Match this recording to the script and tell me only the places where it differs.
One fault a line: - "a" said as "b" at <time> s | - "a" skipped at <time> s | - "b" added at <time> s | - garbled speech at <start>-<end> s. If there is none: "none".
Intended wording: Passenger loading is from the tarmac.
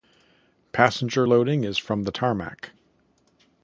none